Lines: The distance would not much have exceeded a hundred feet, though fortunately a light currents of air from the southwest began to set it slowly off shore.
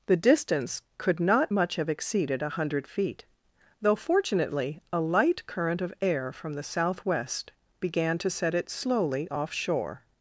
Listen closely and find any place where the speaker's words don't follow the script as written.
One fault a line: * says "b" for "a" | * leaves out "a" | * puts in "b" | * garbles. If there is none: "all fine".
* says "could" for "would"
* says "current" for "currents"